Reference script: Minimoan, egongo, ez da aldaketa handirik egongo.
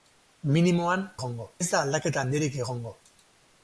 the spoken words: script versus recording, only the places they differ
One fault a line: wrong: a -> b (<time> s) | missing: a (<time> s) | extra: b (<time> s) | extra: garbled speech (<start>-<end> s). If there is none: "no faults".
no faults